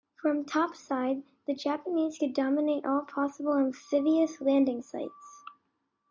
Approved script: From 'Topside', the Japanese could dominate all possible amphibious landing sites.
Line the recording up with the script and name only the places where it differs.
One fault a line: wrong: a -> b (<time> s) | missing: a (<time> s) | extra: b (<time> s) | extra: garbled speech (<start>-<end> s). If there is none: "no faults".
no faults